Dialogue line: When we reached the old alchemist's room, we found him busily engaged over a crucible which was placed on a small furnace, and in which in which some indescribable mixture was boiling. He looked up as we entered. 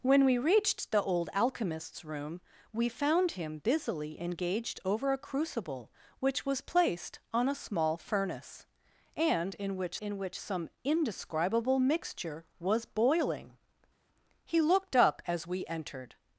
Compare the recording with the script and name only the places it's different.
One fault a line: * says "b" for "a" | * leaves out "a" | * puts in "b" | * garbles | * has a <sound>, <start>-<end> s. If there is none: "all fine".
all fine